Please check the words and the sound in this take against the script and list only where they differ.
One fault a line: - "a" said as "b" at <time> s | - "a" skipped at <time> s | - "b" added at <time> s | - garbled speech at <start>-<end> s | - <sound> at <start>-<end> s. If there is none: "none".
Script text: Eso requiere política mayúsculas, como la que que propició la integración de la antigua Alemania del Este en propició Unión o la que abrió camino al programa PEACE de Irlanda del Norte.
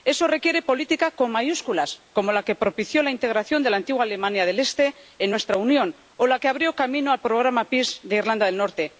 - "con" added at 1.1 s
- "que" skipped at 2.5 s
- "propició" said as "nuestra" at 5.3 s